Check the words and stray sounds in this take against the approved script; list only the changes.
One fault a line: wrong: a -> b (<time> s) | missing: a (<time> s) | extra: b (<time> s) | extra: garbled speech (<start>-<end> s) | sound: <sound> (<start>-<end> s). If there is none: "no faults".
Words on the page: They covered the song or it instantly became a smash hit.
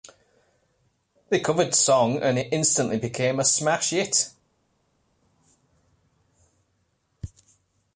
wrong: or -> and (2.2 s)